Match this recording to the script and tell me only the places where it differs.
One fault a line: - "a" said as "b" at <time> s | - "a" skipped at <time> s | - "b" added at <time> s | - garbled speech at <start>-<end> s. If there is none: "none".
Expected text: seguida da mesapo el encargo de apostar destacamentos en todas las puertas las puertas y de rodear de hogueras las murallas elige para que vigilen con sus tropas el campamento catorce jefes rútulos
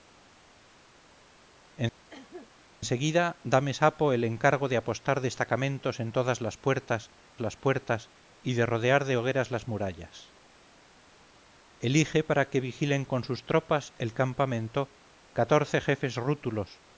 none